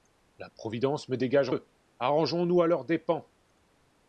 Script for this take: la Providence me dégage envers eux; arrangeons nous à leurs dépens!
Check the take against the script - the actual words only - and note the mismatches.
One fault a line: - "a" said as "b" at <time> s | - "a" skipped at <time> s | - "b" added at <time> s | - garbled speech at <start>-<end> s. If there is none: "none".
- "envers" skipped at 1.5 s